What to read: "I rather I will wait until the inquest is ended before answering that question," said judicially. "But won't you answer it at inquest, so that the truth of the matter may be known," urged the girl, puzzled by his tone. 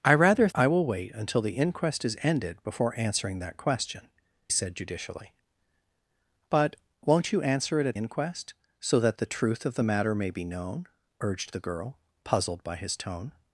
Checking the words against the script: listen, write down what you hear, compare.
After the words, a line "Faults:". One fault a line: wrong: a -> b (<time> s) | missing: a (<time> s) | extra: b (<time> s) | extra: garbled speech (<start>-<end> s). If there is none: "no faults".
"I rather I will wait until the inquest is ended before answering that question," said judicially. "But won't you answer it at inquest, so that the truth of the matter may be known," urged the girl, puzzled by his tone.
Faults:
no faults